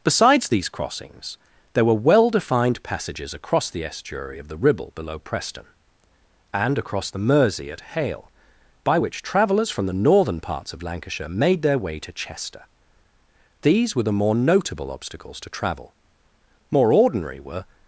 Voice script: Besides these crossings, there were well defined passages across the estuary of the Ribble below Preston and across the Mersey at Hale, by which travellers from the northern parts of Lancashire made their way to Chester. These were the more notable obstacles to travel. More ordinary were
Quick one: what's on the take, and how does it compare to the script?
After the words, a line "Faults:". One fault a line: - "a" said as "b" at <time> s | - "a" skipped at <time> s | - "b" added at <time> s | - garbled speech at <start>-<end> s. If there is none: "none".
Besides these crossings, there were well defined passages across the estuary of the Ribble below Preston and across the Mersey at Hale, by which travellers from the northern parts of Lancashire made their way to Chester. These were the more notable obstacles to travel. More ordinary were
Faults:
none